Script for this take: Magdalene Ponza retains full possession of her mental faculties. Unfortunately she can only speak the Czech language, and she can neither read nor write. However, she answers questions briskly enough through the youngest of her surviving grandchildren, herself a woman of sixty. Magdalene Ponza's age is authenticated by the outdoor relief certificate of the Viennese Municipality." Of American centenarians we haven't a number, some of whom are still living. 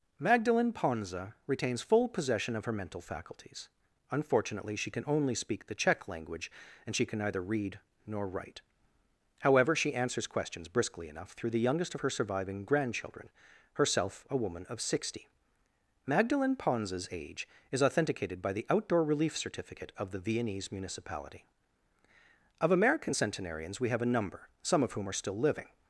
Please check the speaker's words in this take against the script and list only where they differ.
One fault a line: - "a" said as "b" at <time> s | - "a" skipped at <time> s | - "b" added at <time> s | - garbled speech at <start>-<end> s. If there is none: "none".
- "haven't" said as "have" at 23.9 s